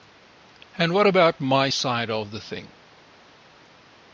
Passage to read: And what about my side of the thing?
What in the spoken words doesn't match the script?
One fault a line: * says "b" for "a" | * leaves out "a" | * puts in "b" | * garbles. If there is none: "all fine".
all fine